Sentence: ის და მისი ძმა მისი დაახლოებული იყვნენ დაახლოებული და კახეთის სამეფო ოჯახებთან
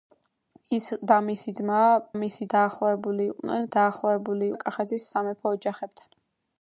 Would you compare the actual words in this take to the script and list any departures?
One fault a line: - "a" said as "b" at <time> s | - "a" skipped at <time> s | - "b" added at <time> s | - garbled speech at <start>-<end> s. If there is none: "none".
none